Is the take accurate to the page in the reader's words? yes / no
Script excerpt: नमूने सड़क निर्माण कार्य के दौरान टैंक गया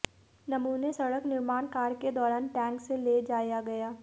no